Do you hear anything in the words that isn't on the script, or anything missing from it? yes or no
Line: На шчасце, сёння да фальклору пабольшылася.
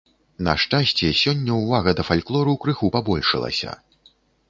yes